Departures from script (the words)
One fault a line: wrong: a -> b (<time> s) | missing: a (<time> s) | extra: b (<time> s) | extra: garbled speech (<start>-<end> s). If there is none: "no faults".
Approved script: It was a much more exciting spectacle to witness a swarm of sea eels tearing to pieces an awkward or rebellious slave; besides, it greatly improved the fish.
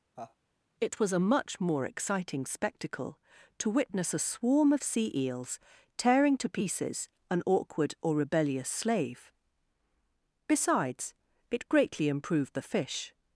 no faults